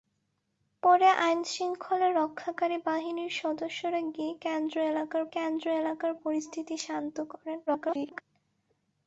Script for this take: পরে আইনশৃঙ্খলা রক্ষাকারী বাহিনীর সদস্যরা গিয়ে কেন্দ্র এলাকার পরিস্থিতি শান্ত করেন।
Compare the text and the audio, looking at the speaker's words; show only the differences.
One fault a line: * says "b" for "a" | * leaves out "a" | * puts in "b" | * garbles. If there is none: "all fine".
* puts in "কেন্দ্র এলাকার"
* garbles